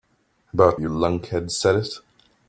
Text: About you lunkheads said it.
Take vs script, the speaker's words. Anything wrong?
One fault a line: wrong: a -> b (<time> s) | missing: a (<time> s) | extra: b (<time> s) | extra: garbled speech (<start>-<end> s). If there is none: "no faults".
no faults